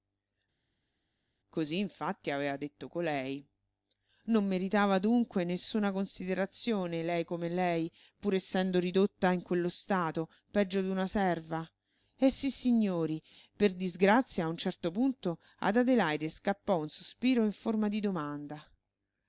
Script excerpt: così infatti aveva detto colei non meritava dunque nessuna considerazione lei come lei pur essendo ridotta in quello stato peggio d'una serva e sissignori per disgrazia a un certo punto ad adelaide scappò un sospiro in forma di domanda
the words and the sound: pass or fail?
pass